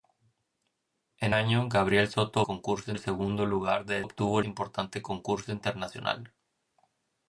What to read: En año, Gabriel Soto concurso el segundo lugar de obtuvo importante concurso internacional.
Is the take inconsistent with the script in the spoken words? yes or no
no